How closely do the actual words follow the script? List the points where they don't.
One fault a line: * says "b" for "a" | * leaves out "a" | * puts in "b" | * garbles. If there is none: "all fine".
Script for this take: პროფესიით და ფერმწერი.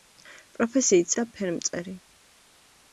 all fine